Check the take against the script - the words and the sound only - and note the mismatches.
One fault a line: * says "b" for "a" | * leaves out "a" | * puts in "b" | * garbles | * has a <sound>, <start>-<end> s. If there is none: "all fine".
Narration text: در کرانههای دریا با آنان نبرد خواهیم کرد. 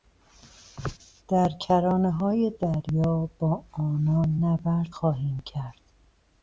all fine